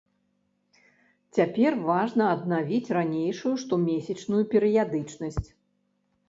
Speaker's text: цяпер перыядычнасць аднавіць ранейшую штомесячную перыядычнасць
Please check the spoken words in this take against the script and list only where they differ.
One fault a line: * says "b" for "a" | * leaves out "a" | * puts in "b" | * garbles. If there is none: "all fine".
* says "важна" for "перыядычнасць"